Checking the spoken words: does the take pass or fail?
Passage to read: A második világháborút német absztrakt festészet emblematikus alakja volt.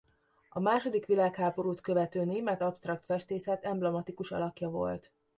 fail